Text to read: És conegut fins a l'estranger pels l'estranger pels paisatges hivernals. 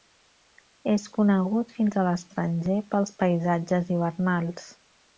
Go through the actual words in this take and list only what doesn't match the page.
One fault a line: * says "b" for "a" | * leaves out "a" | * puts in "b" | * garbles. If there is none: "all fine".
* leaves out "l'estranger pels"